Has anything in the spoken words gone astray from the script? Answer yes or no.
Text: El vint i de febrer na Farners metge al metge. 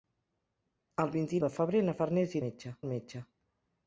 no